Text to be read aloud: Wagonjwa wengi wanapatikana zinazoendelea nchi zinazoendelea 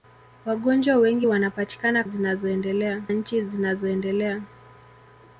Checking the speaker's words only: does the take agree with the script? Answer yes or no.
yes